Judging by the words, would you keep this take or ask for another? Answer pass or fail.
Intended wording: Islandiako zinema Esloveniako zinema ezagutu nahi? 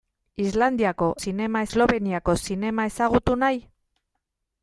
pass